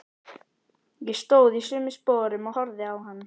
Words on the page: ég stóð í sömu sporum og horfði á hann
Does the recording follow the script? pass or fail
pass